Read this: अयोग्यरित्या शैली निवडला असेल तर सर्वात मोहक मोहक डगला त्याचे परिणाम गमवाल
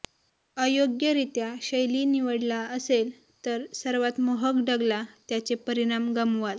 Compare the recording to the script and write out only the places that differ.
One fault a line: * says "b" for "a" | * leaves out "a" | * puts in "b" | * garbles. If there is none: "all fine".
* leaves out "मोहक"